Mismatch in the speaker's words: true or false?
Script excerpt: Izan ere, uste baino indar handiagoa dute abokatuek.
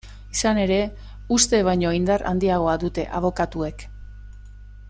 false